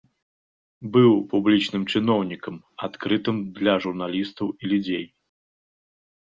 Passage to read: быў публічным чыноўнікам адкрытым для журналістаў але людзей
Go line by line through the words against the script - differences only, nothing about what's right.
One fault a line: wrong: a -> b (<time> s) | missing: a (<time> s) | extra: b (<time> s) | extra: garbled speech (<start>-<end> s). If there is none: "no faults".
wrong: але -> і (4.6 s)